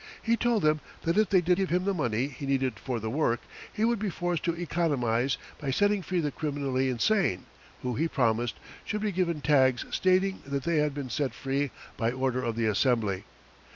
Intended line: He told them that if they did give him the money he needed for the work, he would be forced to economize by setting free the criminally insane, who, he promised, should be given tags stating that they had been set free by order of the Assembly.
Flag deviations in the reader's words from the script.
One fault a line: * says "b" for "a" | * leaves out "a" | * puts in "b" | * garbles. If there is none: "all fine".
all fine